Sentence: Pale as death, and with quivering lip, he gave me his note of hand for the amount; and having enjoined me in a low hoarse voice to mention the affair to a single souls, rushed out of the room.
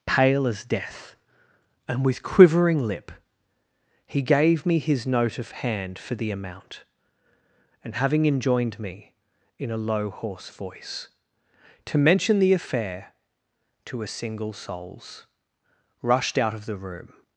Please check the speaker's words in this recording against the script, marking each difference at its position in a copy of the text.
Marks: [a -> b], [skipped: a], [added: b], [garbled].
Pale as death, and with quivering lip, he gave me his note of hand for the amount; and having enjoined me in a low hoarse voice to mention the affair to a single souls, rushed out of the room.